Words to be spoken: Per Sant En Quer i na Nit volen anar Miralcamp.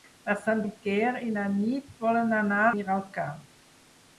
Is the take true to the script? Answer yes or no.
yes